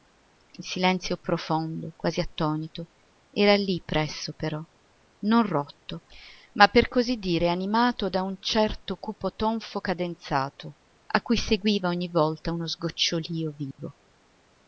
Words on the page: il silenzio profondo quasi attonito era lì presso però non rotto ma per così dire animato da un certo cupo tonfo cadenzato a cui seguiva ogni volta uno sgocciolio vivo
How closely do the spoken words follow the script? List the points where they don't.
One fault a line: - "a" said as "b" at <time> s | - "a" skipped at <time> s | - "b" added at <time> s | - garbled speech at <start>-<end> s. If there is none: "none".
none